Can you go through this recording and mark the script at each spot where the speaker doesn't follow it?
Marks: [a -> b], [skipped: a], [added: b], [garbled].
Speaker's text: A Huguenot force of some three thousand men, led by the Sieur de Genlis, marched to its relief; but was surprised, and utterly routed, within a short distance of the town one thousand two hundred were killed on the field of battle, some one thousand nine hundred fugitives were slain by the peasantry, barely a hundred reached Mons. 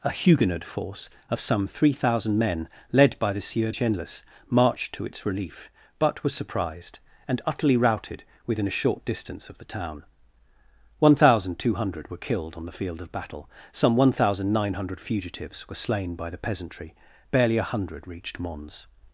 A Huguenot force of some three thousand men, led by the Sieur [skipped: de] Genlis, marched to its relief; but was surprised, and utterly routed, within a short distance of the town one thousand two hundred were killed on the field of battle, some one thousand nine hundred fugitives were slain by the peasantry, barely a hundred reached Mons.